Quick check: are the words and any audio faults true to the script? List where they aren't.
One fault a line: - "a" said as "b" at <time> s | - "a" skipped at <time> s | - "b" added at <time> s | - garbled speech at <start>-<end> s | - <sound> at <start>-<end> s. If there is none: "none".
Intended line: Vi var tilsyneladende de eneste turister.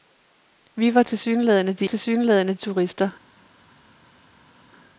- "eneste" said as "tilsyneladende" at 1.8 s